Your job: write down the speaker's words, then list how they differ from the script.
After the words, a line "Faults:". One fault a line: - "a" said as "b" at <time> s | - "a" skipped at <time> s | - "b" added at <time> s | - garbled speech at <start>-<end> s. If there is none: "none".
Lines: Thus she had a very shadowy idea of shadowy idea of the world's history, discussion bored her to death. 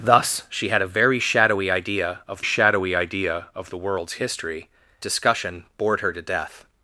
Thus she had a very shadowy idea of shadowy idea of the world's history, discussion bored her to death.
Faults:
none